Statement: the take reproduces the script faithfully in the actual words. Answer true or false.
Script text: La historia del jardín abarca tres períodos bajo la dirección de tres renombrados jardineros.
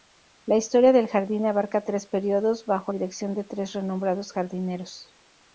false